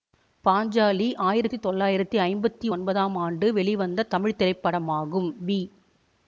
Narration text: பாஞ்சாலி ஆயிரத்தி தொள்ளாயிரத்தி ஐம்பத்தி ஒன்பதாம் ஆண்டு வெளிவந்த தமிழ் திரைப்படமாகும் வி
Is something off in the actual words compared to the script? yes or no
no